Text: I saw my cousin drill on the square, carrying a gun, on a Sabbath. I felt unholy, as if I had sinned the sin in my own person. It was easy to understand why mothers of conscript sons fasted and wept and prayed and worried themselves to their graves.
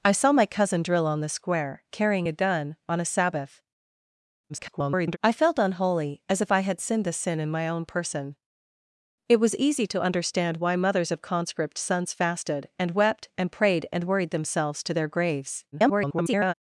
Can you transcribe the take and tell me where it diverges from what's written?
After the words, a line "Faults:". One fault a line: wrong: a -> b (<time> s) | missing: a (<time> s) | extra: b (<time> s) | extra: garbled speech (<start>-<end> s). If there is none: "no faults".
I saw my cousin drill on the square, carrying a gun, on a Sabbath. [garbled] I felt unholy, as if I had sinned the sin in my own person. It was easy to understand why mothers of conscript sons fasted and wept and prayed and worried themselves to their graves. [garbled]
Faults:
extra: garbled speech (4.5-5.2 s)
extra: garbled speech (15.7-16.5 s)